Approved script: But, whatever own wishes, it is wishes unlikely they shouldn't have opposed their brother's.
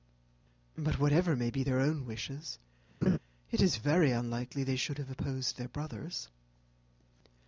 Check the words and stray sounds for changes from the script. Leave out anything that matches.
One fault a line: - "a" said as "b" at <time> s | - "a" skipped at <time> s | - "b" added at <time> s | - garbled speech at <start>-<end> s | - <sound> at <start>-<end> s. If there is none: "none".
- "may be their" added at 1.4 s
- laugh at 3.0-3.2 s
- "wishes" said as "very" at 3.8 s
- "shouldn't" said as "should" at 4.8 s